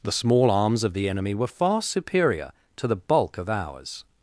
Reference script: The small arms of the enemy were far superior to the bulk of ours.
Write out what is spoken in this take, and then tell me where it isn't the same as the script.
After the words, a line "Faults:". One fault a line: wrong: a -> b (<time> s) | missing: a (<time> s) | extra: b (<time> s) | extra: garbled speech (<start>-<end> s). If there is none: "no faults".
The small arms of the enemy were far superior to the bulk of ours.
Faults:
no faults